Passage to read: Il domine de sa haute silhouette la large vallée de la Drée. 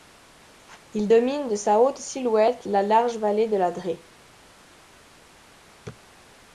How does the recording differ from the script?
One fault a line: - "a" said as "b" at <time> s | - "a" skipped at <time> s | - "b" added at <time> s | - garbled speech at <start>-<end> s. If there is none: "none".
none